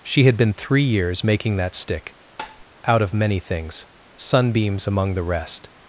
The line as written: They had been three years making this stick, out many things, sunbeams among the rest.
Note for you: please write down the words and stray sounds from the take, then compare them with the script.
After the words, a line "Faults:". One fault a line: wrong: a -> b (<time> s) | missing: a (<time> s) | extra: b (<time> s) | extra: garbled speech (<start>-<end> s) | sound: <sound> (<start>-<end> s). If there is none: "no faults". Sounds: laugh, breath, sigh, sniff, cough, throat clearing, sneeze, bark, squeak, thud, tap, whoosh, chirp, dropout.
She had been three years making that stick, out of many things, sunbeams among the rest.
Faults:
wrong: They -> She (0.0 s)
wrong: this -> that (1.6 s)
sound: tap (2.4-2.6 s)
extra: of (3.0 s)